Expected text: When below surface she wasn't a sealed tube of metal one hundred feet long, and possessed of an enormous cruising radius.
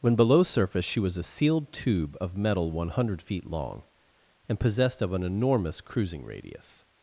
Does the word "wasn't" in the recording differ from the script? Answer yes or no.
yes